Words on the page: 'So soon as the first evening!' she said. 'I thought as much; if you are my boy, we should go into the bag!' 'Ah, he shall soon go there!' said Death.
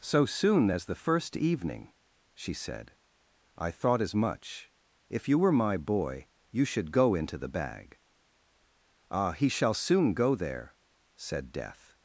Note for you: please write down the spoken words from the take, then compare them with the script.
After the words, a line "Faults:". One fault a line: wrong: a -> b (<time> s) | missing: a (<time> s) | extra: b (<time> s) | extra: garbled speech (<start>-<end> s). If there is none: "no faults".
'So soon as the first evening!' she said. 'I thought as much; if you were my boy, you should go into the bag!' 'Ah, he shall soon go there!' said Death.
Faults:
wrong: are -> were (5.4 s)
wrong: we -> you (6.5 s)